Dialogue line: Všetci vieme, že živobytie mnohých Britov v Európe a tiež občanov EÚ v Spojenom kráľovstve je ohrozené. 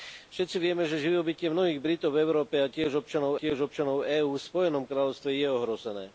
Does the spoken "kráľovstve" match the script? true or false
true